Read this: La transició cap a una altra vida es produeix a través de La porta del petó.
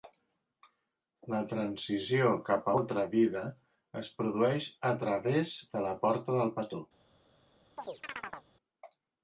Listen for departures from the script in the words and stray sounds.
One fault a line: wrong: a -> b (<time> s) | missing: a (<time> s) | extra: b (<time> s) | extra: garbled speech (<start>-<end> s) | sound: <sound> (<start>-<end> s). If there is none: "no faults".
missing: una (2.7 s)
sound: chirp (7.8-8.5 s)